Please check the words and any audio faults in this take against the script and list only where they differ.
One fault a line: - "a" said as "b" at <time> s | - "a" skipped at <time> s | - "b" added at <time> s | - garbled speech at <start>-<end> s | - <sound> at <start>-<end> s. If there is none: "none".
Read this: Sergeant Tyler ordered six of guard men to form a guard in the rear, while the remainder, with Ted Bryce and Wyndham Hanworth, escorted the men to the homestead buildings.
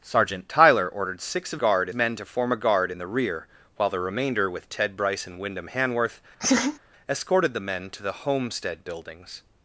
- laugh at 6.4-6.8 s